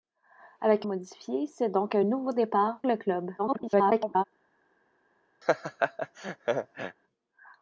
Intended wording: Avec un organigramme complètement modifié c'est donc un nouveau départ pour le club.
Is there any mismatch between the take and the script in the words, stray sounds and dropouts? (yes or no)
yes